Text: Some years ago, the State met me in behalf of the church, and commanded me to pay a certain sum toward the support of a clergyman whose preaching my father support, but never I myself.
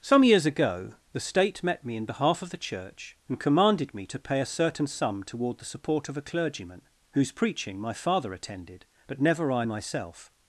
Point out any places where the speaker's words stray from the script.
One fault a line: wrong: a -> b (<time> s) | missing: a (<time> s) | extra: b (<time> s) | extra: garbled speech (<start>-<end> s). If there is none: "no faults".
wrong: support -> attended (8.3 s)